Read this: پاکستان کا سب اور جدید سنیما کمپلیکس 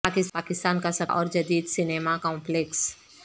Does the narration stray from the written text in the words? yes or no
no